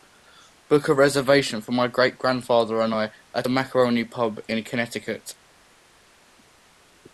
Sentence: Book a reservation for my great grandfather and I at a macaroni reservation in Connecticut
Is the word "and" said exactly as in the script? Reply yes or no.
yes